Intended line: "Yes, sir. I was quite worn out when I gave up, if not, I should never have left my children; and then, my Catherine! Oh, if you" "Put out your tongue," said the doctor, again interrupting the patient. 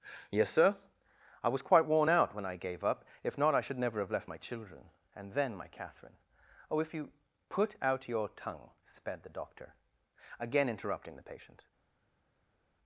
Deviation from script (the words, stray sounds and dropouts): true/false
true